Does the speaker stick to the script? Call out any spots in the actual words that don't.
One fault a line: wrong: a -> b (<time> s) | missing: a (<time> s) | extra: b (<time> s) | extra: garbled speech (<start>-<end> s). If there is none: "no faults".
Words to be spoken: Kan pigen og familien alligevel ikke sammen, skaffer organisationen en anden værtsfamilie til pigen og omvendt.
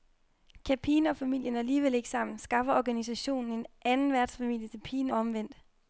missing: og (5.1 s)